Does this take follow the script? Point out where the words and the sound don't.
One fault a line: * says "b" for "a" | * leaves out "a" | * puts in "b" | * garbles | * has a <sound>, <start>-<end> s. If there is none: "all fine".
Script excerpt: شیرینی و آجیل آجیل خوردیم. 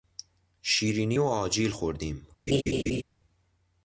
* leaves out "آجیل"
* has a laugh, 2.5-3.0 s